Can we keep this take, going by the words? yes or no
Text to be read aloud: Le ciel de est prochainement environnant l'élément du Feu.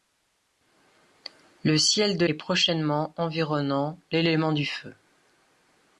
yes